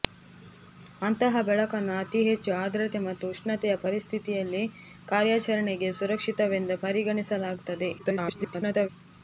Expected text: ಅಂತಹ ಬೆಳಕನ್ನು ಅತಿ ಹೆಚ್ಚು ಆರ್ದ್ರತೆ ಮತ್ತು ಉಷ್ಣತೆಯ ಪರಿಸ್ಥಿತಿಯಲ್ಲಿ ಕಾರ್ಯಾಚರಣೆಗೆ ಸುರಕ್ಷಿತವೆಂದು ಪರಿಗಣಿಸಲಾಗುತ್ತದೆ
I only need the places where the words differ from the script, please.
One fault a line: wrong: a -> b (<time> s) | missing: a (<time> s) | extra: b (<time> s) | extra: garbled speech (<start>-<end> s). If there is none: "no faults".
extra: garbled speech (8.0-8.9 s)